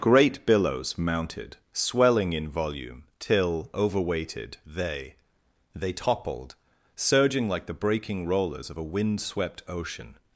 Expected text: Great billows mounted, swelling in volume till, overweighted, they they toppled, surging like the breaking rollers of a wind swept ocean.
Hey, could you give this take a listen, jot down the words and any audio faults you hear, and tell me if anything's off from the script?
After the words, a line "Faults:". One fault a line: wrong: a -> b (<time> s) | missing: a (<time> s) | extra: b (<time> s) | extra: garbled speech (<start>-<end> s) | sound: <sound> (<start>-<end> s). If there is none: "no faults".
Great billows mounted, swelling in volume till, overweighted, they they toppled, surging like the breaking rollers of a wind swept ocean.
Faults:
no faults